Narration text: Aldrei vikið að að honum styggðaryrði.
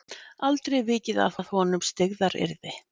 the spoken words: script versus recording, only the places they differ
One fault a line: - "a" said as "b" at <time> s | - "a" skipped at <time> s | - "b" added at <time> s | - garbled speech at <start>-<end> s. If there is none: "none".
none